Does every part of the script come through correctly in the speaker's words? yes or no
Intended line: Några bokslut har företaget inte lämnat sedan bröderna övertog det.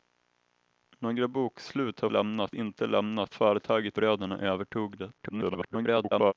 no